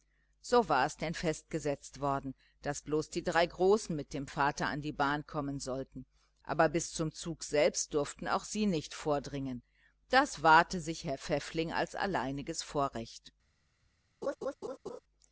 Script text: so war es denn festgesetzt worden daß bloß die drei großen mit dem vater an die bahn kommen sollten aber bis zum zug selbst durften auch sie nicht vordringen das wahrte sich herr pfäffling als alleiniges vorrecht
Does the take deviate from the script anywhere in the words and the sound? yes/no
yes